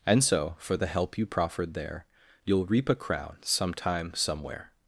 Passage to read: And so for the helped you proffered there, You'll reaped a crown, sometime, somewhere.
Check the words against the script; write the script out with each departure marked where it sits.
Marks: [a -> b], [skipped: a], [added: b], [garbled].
And so for the [helped -> help] you proffered there, You'll [reaped -> reap] a crown, sometime, somewhere.